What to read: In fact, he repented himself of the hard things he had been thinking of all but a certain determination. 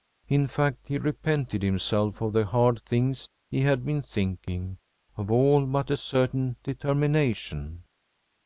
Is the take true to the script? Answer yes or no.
yes